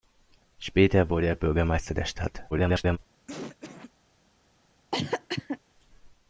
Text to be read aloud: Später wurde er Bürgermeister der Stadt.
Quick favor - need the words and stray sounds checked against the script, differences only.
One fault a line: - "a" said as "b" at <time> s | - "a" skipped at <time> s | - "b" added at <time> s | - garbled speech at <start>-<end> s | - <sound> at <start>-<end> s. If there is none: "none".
- garbled speech at 2.5-3.0 s
- cough at 3.3-3.9 s
- cough at 4.9-5.6 s